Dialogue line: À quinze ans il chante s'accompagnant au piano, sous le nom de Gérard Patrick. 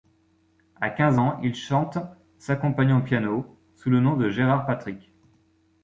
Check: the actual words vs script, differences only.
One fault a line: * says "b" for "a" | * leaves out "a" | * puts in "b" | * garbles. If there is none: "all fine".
all fine